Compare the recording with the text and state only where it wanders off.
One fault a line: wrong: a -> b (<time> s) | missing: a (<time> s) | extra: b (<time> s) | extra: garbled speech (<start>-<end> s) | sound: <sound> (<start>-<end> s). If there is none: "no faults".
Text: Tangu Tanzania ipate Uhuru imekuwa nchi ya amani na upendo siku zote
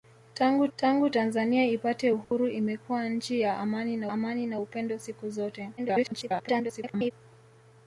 extra: tangu (0.8 s)
sound: dropout (2.2-2.3 s)
extra: amani na (4.1 s)
extra: garbled speech (5.8-7.1 s)